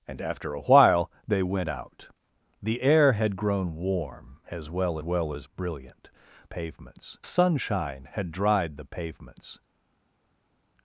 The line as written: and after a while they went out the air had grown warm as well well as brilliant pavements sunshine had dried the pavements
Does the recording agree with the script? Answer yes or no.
yes